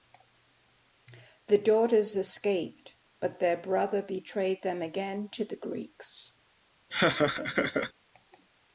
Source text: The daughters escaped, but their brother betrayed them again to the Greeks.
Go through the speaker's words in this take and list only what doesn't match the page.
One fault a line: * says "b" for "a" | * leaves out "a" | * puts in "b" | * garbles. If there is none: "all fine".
all fine